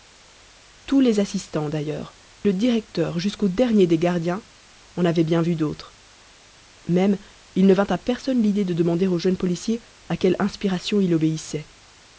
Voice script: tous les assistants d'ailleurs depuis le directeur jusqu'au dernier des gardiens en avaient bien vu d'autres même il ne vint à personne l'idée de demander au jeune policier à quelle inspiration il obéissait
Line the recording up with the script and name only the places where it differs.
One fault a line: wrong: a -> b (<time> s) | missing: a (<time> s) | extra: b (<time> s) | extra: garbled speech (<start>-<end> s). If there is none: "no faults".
missing: depuis (2.1 s)